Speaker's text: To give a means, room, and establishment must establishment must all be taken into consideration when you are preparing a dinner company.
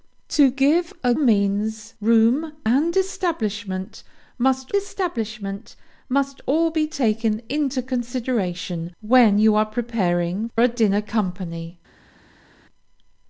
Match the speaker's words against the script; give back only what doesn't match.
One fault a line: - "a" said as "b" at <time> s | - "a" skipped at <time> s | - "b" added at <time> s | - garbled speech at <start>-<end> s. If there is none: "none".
none